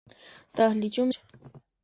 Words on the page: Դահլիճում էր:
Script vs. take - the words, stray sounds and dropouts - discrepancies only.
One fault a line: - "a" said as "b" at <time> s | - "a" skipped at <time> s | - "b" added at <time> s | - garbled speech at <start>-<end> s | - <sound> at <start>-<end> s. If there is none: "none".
none